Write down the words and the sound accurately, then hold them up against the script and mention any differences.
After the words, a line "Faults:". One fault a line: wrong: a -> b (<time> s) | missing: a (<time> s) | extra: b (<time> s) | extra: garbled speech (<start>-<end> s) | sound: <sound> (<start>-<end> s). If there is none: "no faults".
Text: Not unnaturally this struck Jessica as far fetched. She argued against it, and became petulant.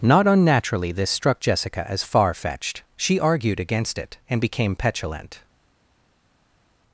Not unnaturally this struck Jessica as far fetched. She argued against it, and became petulant.
Faults:
no faults